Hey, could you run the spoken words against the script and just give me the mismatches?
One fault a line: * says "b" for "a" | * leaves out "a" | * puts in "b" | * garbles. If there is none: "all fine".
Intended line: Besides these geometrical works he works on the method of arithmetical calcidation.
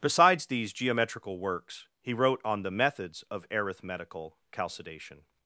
* says "wrote" for "works"
* says "methods" for "method"